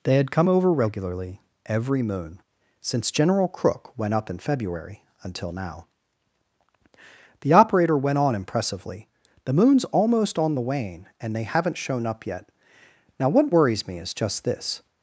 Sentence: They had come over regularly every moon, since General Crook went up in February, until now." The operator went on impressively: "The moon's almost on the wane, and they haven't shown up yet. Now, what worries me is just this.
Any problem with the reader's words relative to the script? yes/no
no